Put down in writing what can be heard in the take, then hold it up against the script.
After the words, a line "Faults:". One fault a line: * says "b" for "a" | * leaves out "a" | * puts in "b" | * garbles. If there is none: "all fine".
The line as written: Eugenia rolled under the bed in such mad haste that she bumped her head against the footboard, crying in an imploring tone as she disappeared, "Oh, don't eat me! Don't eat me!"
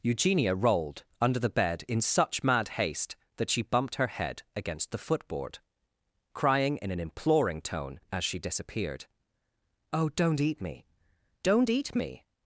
Eugenia rolled under the bed in such mad haste that she bumped her head against the footboard, crying in an imploring tone as she disappeared, "Oh, don't eat me! Don't eat me!"
Faults:
all fine